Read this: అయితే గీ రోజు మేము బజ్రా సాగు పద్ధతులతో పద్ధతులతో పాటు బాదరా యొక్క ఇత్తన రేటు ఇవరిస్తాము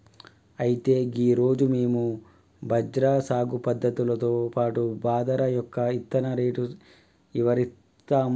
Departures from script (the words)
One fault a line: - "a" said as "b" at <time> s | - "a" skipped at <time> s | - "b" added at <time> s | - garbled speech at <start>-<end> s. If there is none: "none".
- "పద్ధతులతో" skipped at 4.3 s